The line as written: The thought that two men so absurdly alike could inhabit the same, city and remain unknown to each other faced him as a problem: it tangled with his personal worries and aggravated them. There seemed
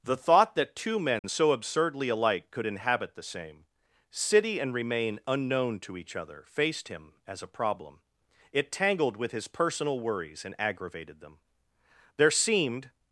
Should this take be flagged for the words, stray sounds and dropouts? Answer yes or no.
yes